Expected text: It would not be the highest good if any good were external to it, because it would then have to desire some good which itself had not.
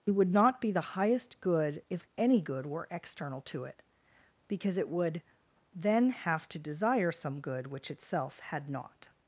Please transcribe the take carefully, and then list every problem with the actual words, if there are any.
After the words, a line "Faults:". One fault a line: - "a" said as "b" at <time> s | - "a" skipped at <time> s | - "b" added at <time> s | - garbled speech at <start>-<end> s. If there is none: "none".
It would not be the highest good if any good were external to it, because it would then have to desire some good which itself had not.
Faults:
none